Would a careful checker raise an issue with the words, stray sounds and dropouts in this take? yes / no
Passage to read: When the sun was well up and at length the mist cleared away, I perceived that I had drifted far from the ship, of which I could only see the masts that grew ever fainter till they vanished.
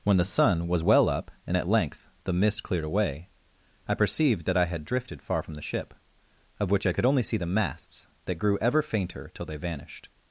no